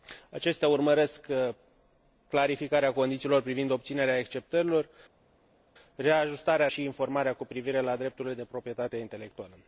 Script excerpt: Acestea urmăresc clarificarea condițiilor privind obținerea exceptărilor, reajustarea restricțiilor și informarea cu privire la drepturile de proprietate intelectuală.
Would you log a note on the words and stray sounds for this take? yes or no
yes